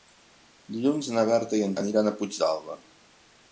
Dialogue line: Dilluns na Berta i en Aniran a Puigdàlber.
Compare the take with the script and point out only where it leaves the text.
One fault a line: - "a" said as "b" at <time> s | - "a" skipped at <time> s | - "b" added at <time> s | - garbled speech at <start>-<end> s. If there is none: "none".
none